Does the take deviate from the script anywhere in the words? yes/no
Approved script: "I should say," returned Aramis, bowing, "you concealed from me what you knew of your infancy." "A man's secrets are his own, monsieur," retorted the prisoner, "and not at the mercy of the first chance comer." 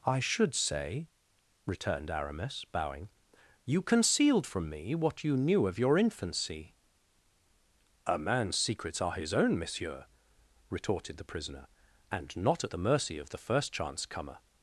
no